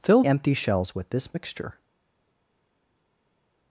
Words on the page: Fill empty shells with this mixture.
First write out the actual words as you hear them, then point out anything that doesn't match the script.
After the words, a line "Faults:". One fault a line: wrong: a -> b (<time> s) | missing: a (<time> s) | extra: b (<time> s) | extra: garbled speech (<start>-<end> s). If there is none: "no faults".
Fill empty shells with this mixture.
Faults:
no faults